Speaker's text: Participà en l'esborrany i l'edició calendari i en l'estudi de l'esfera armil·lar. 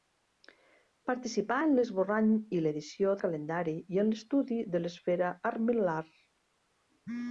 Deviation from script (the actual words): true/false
false